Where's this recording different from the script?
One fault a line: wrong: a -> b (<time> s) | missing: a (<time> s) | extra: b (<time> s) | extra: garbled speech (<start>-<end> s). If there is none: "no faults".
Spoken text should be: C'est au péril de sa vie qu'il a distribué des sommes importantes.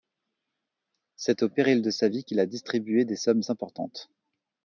no faults